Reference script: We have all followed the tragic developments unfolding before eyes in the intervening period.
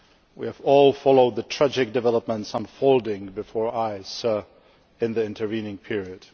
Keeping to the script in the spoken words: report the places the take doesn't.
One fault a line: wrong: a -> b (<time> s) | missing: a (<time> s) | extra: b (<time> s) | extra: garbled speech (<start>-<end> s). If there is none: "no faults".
no faults